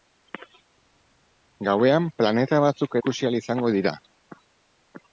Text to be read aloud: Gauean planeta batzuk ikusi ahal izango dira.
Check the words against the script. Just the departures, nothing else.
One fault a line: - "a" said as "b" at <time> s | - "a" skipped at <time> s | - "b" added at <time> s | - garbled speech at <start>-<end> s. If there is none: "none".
none